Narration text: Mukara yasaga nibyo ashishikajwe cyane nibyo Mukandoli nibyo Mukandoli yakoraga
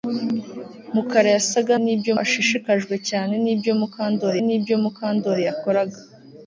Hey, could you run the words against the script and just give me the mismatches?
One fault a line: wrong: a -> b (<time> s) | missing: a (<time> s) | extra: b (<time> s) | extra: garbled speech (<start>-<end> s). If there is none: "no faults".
no faults